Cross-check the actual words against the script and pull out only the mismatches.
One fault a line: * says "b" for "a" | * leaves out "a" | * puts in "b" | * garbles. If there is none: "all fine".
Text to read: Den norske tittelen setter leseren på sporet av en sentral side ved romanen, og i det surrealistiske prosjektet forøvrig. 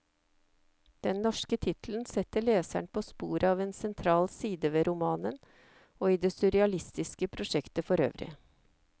all fine